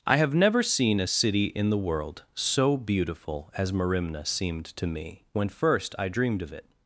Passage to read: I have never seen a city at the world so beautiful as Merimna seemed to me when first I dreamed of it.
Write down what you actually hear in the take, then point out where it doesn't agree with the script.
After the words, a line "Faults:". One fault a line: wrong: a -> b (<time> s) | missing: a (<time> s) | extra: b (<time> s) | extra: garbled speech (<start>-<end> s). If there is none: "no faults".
I have never seen a city in the world so beautiful as Merimna seemed to me when first I dreamed of it.
Faults:
wrong: at -> in (1.5 s)